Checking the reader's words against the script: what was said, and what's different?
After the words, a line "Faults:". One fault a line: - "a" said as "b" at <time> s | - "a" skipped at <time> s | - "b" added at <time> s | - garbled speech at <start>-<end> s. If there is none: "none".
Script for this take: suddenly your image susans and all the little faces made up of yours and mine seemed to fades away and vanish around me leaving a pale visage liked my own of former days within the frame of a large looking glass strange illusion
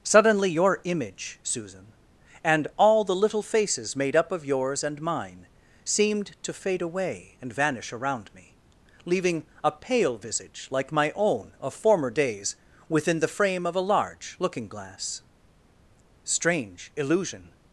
suddenly your image susan and all the little faces made up of yours and mine seemed to fade away and vanish around me leaving a pale visage like my own of former days within the frame of a large looking glass strange illusion
Faults:
- "susans" said as "susan" at 1.4 s
- "fades" said as "fade" at 6.5 s
- "liked" said as "like" at 10.7 s